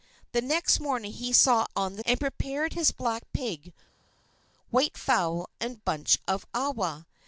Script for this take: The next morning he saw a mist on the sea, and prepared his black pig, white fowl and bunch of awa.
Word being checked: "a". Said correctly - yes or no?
no